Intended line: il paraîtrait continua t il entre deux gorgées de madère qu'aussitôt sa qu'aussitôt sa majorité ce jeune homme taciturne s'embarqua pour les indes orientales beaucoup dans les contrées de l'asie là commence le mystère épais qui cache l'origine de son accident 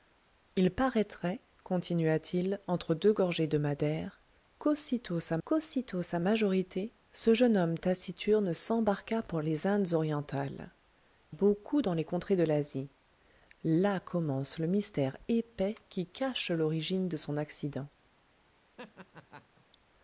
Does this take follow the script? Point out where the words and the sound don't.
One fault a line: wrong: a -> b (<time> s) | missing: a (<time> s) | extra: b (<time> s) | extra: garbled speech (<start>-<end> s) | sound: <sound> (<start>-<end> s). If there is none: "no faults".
sound: laugh (18.8-19.6 s)